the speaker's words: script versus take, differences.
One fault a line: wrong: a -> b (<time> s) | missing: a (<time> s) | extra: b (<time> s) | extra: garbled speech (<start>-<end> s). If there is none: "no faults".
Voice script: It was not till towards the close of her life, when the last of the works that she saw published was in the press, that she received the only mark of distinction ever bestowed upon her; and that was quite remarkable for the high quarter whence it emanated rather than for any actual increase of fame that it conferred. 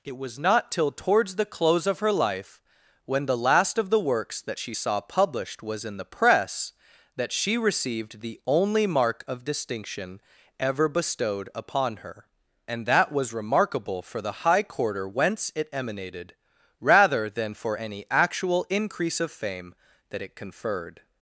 missing: quite (13.3 s)